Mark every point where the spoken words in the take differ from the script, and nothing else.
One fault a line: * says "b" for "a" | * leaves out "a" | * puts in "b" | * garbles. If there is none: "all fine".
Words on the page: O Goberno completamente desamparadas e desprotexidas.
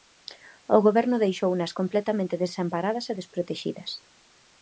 * puts in "deixounas"